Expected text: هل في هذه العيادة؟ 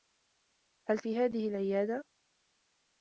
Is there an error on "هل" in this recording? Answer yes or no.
no